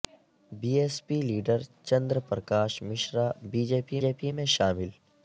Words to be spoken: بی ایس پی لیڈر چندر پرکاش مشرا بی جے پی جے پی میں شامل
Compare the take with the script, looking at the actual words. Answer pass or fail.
pass